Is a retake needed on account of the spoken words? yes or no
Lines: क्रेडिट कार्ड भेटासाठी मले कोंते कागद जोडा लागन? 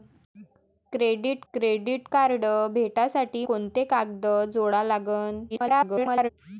yes